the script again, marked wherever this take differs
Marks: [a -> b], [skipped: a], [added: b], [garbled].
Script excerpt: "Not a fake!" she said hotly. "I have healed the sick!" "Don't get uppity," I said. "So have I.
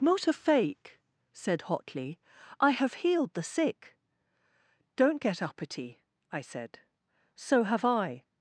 "Not a fake!" [skipped: she] said hotly. "I have healed the sick!" "Don't get uppity," I said. "So have I.